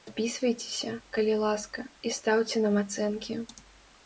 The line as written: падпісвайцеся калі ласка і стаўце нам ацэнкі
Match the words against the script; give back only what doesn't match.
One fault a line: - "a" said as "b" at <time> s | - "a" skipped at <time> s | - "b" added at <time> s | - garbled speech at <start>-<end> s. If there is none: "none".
none